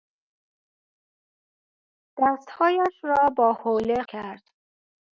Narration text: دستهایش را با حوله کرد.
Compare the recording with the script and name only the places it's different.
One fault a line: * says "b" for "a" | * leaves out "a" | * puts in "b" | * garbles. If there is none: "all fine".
all fine